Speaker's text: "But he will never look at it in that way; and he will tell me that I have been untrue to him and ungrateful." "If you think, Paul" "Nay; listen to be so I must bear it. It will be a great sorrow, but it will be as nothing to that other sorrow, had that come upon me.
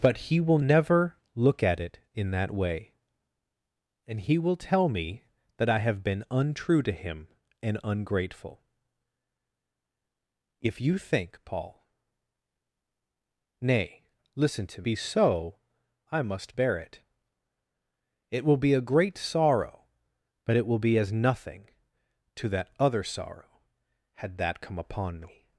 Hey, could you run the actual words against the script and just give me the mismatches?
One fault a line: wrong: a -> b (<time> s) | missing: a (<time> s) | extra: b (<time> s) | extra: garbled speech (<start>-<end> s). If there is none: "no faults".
no faults